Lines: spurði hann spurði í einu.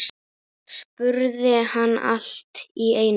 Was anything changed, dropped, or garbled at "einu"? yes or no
no